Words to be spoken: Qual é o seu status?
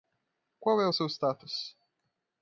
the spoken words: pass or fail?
pass